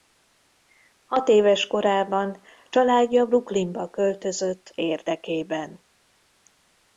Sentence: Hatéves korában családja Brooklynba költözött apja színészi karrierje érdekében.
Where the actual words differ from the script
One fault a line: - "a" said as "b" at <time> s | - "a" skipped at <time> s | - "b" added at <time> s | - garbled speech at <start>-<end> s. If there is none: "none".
- "apja színészi karrierje" skipped at 4.8 s